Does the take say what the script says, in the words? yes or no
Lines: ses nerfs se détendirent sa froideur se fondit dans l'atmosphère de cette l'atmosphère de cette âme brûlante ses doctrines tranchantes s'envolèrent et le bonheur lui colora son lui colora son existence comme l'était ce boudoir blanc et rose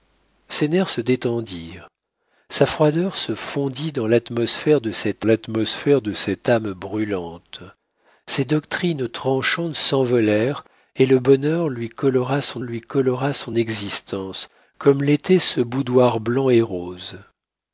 yes